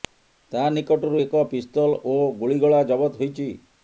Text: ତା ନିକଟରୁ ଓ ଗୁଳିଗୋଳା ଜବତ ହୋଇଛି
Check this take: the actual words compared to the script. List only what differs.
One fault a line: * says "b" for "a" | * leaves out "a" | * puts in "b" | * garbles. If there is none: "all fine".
* puts in "ଏକ ପିସ୍ତଲ"